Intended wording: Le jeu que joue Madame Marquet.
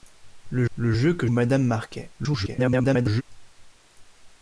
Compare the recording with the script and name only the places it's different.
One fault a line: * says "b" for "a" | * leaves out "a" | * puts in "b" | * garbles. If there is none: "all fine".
* puts in "le"
* leaves out "joue"
* garbles